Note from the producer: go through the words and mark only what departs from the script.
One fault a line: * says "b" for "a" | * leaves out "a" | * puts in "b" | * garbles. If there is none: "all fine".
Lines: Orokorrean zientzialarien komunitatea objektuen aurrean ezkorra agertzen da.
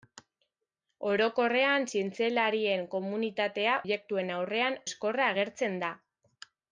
all fine